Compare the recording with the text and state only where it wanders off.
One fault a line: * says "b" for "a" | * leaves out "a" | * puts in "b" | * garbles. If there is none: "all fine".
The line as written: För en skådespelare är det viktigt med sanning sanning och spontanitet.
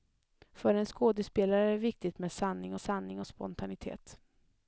all fine